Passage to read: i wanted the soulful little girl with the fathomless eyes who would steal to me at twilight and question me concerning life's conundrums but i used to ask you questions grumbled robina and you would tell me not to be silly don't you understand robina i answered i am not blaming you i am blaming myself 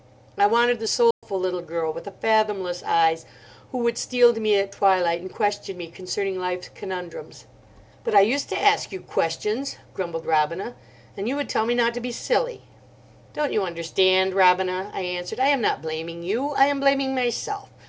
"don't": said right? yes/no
yes